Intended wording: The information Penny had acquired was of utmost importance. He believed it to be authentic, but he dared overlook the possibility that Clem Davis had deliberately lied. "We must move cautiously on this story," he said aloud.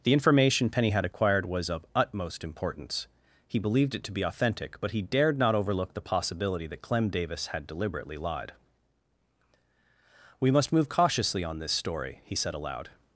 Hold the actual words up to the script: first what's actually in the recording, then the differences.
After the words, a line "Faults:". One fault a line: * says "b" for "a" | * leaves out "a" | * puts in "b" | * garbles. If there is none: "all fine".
The information Penny had acquired was of utmost importance. He believed it to be authentic, but he dared not overlook the possibility that Clem Davis had deliberately lied. "We must move cautiously on this story," he said aloud.
Faults:
* puts in "not"